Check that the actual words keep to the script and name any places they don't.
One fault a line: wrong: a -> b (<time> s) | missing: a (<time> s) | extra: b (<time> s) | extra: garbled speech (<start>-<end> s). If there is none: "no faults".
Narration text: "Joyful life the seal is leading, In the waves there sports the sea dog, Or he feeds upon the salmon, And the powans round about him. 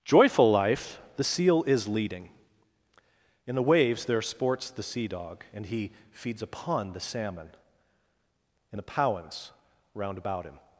wrong: Or -> And (5.5 s)